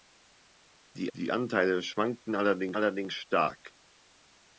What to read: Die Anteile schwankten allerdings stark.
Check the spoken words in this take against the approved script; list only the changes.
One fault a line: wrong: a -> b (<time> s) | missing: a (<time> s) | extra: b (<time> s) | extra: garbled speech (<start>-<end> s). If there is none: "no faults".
extra: die (1.2 s)
extra: allerdings (2.7 s)